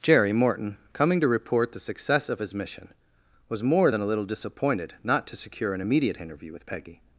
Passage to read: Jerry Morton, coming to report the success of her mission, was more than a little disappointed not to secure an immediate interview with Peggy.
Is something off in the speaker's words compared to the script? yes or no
yes